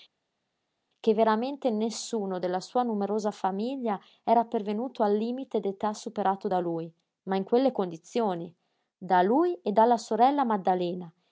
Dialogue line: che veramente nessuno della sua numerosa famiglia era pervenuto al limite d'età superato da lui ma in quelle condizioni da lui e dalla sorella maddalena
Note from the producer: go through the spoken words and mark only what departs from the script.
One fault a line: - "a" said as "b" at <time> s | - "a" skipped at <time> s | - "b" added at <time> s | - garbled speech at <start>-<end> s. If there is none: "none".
none